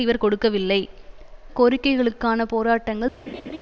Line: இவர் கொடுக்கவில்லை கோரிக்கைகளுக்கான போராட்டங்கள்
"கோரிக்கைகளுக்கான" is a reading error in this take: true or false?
false